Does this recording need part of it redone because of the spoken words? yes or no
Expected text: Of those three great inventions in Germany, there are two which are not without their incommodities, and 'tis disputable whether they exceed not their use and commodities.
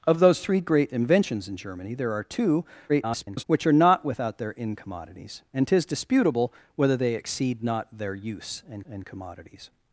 yes